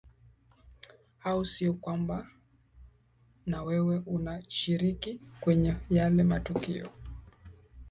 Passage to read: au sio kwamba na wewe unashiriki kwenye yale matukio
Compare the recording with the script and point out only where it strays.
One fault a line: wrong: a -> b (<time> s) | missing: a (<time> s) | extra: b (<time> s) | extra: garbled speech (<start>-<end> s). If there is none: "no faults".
no faults